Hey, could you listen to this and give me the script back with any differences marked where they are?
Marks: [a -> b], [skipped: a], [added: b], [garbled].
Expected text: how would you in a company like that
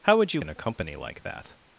how would you in a company like that